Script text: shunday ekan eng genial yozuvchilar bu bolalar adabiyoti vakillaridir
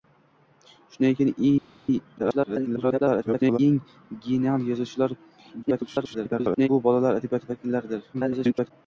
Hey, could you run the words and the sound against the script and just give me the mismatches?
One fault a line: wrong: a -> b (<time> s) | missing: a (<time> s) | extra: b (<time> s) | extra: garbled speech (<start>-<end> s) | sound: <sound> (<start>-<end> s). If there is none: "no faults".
extra: garbled speech (2.2-3.6 s)
extra: garbled speech (5.6-6.7 s)
extra: garbled speech (8.1-8.7 s)